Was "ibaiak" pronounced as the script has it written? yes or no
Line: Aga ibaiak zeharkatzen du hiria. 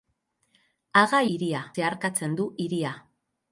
no